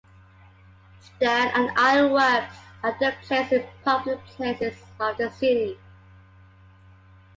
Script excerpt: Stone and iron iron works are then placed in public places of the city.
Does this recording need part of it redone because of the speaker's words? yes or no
yes